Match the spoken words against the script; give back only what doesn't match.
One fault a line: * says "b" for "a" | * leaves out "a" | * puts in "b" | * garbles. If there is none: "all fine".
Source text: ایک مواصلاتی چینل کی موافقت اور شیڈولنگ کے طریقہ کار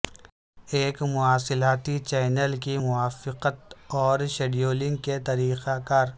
all fine